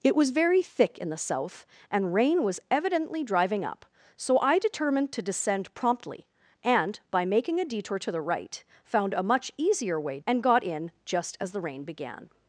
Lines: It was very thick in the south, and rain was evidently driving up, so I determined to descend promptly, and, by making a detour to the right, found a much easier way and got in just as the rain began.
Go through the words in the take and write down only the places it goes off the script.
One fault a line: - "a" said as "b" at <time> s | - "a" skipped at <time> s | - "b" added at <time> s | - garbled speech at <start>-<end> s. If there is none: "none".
none